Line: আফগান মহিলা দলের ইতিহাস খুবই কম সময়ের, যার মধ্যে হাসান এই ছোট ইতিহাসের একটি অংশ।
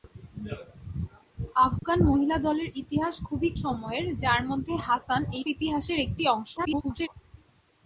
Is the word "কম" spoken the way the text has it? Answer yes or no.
no